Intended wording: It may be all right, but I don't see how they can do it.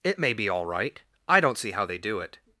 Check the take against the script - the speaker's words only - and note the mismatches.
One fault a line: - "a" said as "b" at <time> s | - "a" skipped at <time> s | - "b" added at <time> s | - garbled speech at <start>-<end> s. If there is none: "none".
- "but" skipped at 1.0 s
- "can" skipped at 2.0 s